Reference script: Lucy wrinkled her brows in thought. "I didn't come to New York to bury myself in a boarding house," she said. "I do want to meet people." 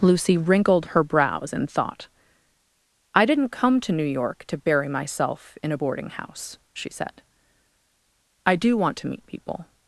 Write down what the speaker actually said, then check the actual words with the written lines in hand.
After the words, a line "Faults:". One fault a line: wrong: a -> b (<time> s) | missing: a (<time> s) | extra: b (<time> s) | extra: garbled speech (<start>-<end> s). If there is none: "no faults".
Lucy wrinkled her brows in thought. "I didn't come to New York to bury myself in a boarding house," she said. "I do want to meet people."
Faults:
no faults